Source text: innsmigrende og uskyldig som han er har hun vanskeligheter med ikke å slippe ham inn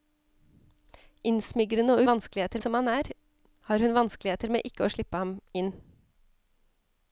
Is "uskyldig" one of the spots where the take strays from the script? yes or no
yes